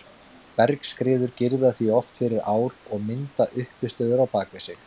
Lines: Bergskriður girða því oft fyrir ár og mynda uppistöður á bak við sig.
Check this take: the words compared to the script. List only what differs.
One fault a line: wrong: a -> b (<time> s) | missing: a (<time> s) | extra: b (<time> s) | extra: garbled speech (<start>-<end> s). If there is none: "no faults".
no faults